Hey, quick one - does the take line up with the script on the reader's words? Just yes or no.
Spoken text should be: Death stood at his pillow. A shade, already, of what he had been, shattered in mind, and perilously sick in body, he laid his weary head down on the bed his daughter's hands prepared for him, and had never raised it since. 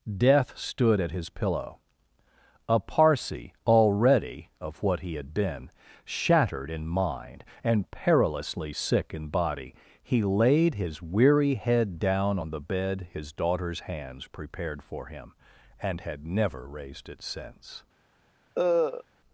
no